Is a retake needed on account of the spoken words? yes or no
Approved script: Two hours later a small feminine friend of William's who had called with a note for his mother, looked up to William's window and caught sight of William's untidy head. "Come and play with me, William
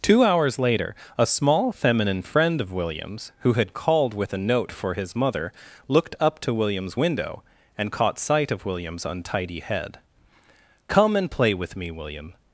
no